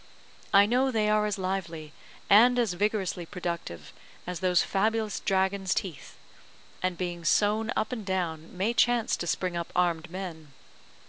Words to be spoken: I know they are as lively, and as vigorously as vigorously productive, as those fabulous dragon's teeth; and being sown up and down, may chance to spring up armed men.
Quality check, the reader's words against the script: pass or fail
fail